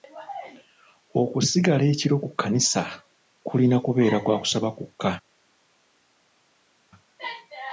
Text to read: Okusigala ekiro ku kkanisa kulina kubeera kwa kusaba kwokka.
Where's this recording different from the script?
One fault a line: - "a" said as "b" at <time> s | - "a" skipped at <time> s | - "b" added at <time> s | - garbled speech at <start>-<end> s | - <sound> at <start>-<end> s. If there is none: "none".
none